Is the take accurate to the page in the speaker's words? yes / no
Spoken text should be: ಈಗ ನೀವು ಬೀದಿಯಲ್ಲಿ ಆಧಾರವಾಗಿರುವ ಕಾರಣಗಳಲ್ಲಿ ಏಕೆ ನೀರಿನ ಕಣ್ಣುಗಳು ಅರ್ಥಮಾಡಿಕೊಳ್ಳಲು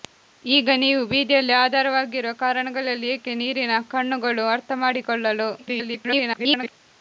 no